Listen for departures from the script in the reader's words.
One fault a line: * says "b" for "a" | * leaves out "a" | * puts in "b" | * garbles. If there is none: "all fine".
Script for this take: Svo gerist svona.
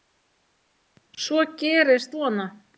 all fine